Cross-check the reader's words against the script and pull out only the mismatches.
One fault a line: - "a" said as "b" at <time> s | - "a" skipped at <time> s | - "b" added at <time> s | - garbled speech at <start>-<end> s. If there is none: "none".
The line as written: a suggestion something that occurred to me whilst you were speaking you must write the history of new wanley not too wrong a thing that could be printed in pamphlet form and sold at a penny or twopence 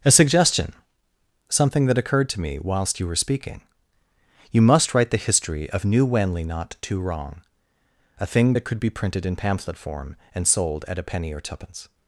none